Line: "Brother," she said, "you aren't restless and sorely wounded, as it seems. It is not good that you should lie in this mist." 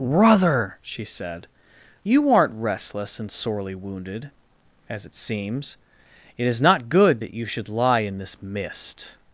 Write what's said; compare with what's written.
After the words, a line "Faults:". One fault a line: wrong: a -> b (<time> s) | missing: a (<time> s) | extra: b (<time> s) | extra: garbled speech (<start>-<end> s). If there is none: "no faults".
"Brother," she said, "you aren't restless and sorely wounded, as it seems. It is not good that you should lie in this mist."
Faults:
no faults